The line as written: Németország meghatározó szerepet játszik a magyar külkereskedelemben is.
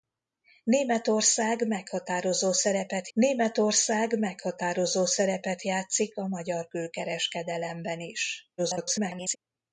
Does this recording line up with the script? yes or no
no